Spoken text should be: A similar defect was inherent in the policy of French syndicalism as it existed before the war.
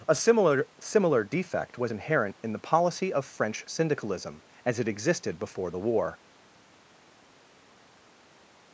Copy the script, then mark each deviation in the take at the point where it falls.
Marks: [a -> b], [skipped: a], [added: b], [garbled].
A similar [added: similar] defect was inherent in the policy of French syndicalism as it existed before the war.